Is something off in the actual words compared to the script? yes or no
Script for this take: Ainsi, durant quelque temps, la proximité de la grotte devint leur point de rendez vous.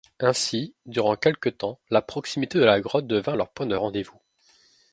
no